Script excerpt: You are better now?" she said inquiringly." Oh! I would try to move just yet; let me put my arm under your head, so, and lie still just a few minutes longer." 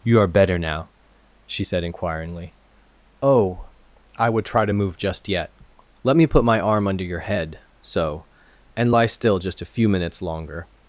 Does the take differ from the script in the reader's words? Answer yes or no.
no